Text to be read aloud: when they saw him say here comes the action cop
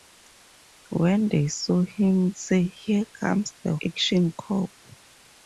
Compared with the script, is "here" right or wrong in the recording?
right